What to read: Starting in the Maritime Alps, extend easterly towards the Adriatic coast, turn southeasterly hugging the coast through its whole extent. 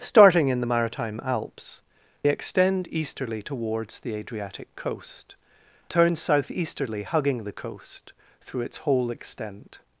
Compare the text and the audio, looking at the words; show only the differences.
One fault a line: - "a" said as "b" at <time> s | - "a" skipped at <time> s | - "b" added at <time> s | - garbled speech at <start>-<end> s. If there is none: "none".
none